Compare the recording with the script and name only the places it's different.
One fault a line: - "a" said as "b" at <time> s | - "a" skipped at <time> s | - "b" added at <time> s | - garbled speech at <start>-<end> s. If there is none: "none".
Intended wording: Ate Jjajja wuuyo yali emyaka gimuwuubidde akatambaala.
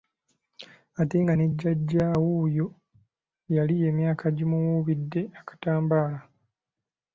- "nga ne" added at 1.2 s